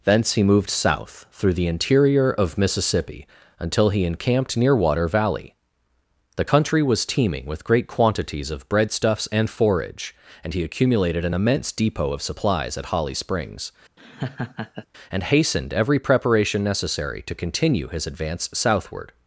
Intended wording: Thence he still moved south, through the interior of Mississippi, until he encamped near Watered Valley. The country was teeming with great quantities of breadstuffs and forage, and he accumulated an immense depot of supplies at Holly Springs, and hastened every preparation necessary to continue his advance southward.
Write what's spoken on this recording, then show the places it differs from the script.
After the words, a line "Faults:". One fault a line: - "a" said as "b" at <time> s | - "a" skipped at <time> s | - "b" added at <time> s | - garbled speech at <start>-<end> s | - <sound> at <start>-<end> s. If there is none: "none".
Thence he moved south, through the interior of Mississippi, until he encamped near Water Valley. The country was teeming with great quantities of breadstuffs and forage, and he accumulated an immense depot of supplies at Holly Springs, and hastened every preparation necessary to continue his advance southward.
Faults:
- "still" skipped at 0.4 s
- "Watered" said as "Water" at 4.8 s
- laugh at 14.0-14.9 s